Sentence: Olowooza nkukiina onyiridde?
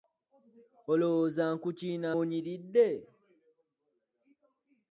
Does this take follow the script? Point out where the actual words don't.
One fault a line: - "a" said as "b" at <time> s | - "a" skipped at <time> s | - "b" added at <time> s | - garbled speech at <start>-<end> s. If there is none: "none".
none